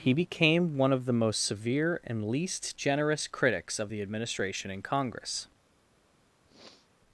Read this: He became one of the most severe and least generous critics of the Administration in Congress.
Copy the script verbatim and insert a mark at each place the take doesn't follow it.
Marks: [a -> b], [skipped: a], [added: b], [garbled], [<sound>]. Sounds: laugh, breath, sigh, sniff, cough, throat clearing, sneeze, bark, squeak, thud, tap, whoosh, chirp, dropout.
He became one of the most severe and least generous critics of the Administration in Congress. [sniff]